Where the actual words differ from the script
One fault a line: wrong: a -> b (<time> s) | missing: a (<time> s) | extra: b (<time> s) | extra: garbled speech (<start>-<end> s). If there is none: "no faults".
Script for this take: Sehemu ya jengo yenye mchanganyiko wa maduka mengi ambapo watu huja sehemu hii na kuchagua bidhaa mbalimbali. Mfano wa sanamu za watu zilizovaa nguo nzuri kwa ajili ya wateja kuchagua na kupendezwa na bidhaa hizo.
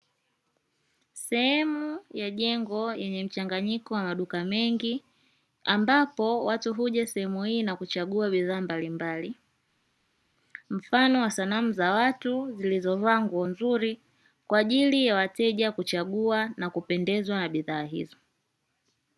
no faults